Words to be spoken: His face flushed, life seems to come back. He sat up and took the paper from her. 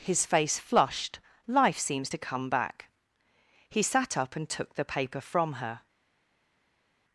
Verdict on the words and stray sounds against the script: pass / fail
pass